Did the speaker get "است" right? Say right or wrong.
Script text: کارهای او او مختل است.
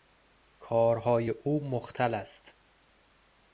right